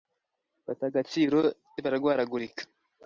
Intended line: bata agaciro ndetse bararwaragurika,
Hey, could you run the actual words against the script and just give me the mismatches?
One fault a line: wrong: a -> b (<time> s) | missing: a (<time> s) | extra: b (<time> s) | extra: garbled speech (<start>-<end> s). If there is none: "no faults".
missing: ndetse (1.4 s)